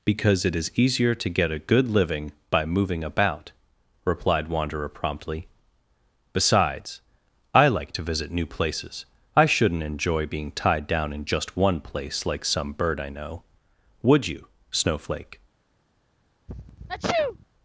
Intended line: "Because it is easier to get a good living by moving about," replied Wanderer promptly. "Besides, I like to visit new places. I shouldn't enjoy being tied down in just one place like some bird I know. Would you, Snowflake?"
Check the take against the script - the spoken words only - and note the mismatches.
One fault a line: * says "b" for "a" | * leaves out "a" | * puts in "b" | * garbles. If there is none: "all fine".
all fine